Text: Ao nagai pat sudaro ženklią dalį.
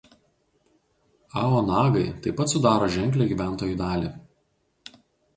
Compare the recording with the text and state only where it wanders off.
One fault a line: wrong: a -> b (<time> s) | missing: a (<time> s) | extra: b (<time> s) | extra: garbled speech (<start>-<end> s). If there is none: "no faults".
extra: taip (2.2 s)
extra: gyventojų (3.3 s)